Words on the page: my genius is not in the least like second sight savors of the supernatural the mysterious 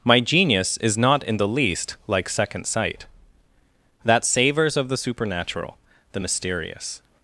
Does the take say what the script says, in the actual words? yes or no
no